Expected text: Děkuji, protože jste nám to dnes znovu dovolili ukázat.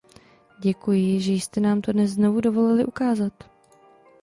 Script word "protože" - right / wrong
wrong